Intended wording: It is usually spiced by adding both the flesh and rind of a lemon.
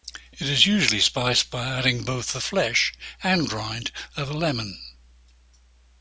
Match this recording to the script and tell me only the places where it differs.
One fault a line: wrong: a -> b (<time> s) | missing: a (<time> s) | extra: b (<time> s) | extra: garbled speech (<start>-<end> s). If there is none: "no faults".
no faults